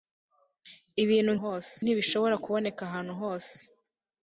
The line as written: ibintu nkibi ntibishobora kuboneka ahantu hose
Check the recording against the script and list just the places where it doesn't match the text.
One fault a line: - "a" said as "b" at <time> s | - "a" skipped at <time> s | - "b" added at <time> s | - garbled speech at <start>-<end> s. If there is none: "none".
- "nkibi" said as "hose" at 1.4 s